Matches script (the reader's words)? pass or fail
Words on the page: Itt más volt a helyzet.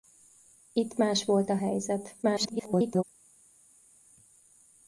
fail